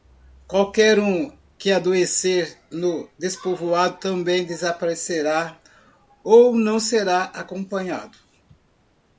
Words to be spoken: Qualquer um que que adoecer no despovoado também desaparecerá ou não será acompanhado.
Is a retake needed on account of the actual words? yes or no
yes